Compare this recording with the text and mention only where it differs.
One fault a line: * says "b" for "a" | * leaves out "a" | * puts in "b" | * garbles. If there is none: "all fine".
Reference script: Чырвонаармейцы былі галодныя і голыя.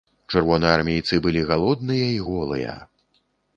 all fine